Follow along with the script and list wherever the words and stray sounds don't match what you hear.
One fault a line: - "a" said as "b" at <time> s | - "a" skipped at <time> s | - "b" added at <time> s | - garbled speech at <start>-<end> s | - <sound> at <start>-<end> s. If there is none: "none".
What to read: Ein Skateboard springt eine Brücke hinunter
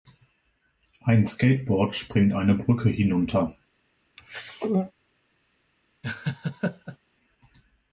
- throat clearing at 4.2-4.9 s
- laugh at 6.0-7.0 s